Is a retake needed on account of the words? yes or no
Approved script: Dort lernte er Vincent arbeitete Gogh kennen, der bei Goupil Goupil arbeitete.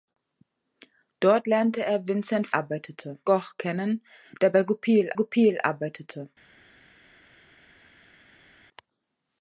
no